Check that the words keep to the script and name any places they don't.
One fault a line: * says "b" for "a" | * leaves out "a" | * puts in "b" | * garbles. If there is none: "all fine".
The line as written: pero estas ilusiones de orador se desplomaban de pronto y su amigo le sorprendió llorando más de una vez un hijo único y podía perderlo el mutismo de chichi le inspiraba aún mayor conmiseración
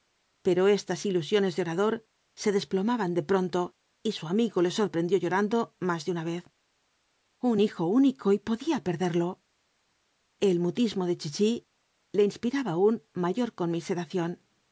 all fine